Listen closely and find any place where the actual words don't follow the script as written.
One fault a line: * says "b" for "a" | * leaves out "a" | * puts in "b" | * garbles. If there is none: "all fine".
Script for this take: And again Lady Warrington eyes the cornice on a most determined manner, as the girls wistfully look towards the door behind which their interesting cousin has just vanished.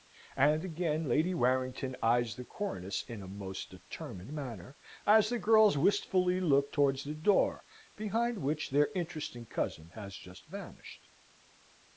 * says "in" for "on"